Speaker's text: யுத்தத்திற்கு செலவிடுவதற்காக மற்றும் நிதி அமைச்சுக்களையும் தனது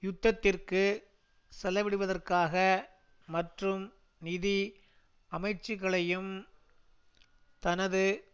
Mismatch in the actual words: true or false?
false